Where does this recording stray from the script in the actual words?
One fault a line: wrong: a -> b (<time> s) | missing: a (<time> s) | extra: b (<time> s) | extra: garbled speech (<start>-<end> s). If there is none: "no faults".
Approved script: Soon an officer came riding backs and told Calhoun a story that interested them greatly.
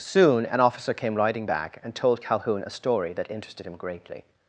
wrong: backs -> back (1.4 s)
wrong: them -> him (3.6 s)